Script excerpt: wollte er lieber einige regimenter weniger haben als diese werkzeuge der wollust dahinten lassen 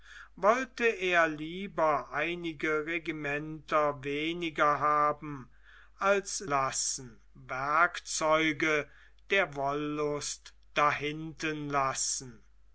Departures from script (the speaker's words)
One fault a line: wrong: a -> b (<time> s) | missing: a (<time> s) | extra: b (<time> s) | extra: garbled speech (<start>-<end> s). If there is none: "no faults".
wrong: diese -> lassen (6.5 s)